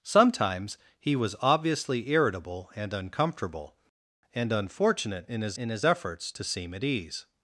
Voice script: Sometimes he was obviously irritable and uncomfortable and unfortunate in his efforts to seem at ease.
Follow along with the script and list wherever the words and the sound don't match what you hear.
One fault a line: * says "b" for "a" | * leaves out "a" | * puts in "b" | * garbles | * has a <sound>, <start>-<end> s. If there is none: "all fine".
* puts in "in his"